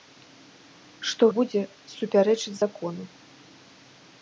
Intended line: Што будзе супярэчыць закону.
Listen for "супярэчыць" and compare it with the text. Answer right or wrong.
right